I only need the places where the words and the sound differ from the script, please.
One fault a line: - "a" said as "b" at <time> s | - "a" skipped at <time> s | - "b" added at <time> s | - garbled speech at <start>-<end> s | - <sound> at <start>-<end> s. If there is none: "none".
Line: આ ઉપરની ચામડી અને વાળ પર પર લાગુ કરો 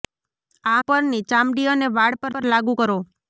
none